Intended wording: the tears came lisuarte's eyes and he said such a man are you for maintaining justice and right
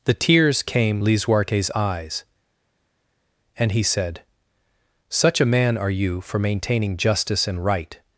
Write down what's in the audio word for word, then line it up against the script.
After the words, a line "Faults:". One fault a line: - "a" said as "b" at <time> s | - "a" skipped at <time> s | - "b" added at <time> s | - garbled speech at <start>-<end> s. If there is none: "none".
the tears came lisuarte's eyes and he said such a man are you for maintaining justice and right
Faults:
none